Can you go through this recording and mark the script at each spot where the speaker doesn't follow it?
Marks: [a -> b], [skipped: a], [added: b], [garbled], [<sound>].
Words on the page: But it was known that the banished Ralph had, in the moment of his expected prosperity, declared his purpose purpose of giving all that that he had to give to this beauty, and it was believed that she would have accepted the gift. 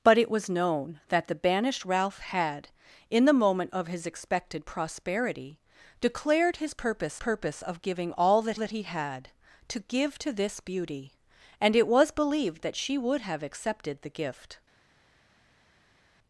But it was known that the banished Ralph had, in the moment of his expected prosperity, declared his purpose purpose of giving all that that he had to give to this beauty, and it was believed that she would have accepted the gift.